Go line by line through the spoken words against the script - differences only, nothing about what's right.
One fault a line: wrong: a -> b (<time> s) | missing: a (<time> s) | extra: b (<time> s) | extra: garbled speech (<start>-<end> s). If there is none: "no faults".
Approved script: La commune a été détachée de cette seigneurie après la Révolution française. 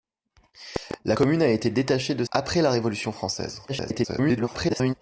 missing: cette seigneurie (2.2 s)
extra: garbled speech (3.7-4.9 s)